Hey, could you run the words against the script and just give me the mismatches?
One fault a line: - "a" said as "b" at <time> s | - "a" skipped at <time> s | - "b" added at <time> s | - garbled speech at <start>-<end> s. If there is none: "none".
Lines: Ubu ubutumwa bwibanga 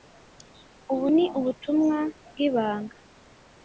- "ni" added at 1.1 s